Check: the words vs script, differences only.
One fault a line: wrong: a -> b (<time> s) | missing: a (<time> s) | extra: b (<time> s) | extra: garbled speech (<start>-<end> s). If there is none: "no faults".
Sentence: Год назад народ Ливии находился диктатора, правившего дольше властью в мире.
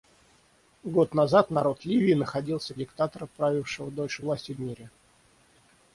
no faults